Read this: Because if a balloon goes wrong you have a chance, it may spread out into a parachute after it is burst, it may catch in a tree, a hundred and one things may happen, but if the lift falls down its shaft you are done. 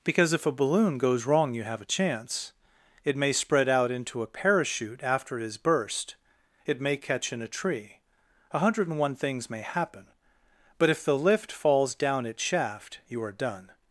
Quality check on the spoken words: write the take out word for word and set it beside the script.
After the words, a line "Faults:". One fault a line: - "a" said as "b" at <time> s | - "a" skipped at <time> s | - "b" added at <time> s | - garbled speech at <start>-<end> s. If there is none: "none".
Because if a balloon goes wrong you have a chance, it may spread out into a parachute after it is burst, it may catch in a tree, a hundred and one things may happen, but if the lift falls down its shaft you are done.
Faults:
none